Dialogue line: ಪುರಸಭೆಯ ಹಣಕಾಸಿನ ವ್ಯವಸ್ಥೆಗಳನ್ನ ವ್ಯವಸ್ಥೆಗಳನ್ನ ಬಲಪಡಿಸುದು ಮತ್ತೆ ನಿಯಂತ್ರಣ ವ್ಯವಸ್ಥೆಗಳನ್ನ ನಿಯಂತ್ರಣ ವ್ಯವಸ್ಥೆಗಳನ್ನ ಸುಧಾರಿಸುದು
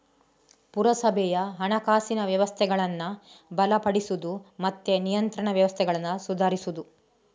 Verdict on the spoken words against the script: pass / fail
fail